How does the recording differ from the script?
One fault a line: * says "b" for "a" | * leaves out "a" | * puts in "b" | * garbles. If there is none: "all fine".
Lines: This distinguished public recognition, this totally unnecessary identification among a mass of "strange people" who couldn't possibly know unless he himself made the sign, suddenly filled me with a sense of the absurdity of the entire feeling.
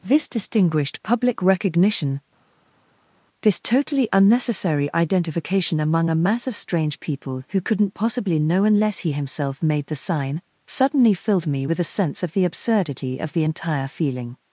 all fine